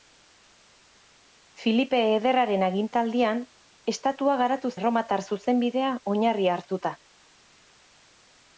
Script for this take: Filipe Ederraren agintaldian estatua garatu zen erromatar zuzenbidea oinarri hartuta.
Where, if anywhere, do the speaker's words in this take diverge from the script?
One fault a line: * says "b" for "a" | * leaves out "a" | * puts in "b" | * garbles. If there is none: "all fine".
* leaves out "zen"